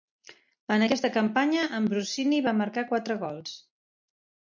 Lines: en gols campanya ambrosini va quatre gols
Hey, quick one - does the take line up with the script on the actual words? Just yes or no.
no